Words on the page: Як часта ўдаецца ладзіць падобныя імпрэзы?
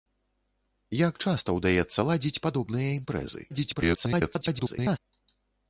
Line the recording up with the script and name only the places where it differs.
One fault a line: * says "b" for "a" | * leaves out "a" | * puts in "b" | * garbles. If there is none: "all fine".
* garbles